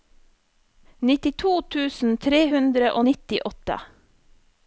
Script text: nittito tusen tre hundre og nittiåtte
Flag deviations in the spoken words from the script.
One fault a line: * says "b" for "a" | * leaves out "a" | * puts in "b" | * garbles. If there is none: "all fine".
all fine